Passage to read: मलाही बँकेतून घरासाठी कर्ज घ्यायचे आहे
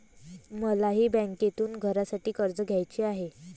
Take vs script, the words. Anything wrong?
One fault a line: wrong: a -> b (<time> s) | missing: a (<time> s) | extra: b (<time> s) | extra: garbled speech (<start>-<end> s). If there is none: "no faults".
no faults